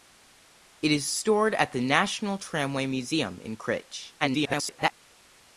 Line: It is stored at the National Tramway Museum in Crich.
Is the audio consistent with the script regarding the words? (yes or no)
no